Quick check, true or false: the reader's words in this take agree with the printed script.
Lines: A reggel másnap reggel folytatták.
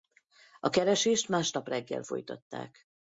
false